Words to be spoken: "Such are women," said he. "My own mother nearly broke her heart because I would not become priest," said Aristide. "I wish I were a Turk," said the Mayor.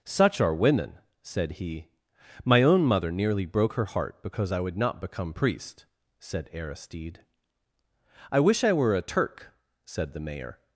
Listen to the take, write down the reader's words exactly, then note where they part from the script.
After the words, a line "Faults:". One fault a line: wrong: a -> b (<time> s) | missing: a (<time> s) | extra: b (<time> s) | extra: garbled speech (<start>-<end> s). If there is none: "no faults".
"Such are women," said he. "My own mother nearly broke her heart because I would not become priest," said Aristide. "I wish I were a Turk," said the Mayor.
Faults:
no faults